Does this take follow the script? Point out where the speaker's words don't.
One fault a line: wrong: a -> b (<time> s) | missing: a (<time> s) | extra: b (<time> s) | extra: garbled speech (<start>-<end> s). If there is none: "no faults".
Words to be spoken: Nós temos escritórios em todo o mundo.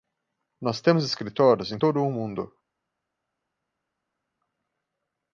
no faults